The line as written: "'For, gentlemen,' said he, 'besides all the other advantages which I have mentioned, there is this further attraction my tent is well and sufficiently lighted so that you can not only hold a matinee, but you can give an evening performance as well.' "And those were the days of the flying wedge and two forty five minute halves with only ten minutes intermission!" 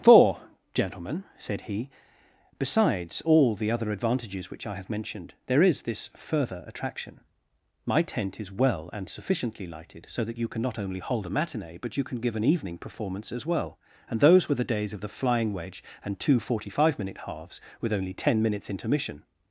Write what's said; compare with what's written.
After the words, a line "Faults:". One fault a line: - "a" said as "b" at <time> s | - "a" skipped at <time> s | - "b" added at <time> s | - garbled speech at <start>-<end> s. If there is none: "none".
"'For, gentlemen,' said he, 'besides all the other advantages which I have mentioned, there is this further attraction my tent is well and sufficiently lighted so that you can not only hold a matinee, but you can give an evening performance as well.' "And those were the days of the flying wedge and two forty five minute halves with only ten minutes intermission!"
Faults:
none